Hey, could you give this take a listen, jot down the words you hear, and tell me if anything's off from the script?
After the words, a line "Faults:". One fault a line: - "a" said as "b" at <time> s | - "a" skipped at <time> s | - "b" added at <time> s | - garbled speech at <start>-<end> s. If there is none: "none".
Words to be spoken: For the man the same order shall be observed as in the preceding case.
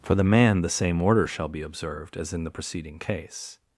For the man the same order shall be observed as in the preceding case.
Faults:
none